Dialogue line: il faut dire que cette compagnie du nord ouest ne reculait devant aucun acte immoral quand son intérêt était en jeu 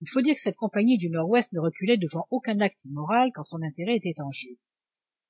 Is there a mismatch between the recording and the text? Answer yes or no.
no